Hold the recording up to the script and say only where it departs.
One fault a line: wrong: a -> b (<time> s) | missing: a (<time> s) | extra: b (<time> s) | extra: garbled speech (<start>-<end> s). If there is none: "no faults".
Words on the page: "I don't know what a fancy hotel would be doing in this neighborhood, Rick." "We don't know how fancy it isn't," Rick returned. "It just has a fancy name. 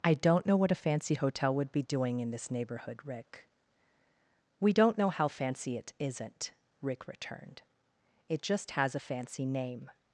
no faults